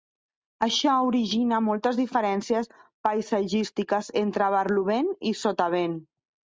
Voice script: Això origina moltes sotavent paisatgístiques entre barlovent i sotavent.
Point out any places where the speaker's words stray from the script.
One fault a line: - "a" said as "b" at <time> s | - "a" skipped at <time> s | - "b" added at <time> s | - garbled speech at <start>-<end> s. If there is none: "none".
- "sotavent" said as "diferències" at 2.0 s